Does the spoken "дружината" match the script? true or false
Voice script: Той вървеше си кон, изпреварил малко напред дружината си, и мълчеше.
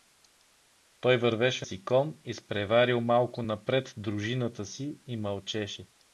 true